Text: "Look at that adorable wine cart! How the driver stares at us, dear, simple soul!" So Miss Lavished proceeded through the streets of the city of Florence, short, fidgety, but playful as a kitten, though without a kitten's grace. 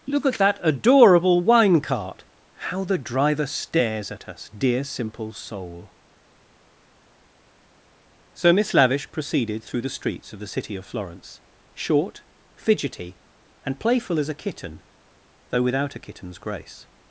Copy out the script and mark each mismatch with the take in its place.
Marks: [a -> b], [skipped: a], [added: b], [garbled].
"Look at that adorable wine cart! How the driver stares at us, dear, simple soul!" So Miss [Lavished -> Lavish] proceeded through the streets of the city of Florence, short, fidgety, [but -> and] playful as a kitten, though without a kitten's grace.